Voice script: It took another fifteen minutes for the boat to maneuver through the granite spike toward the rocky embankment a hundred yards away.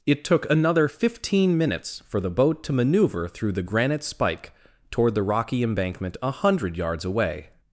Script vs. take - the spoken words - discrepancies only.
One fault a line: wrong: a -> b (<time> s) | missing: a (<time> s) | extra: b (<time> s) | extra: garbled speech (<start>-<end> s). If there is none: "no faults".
no faults